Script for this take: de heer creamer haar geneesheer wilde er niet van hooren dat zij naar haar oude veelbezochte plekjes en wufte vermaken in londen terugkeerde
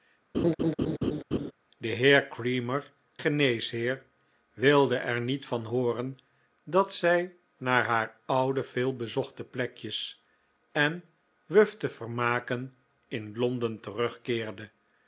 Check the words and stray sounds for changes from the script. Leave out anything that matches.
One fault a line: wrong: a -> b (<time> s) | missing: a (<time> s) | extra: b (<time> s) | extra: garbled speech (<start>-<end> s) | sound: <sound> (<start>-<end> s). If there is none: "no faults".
sound: laugh (0.3-1.5 s)
missing: haar (2.9 s)